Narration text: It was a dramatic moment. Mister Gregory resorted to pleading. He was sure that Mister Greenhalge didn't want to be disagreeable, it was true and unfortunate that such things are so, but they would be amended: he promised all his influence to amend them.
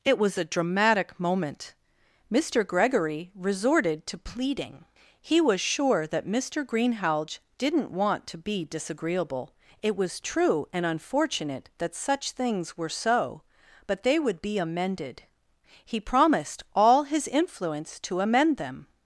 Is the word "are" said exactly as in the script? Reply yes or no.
no